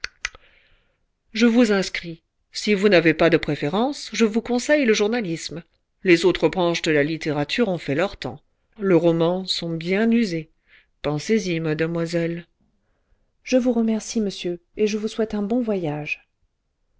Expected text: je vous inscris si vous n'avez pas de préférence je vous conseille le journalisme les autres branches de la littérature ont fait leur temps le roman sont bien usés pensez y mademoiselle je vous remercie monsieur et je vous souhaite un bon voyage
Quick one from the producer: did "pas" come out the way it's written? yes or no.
yes